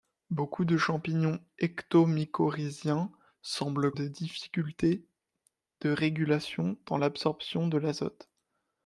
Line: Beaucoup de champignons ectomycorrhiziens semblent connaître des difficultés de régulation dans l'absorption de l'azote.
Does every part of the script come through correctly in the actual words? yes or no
no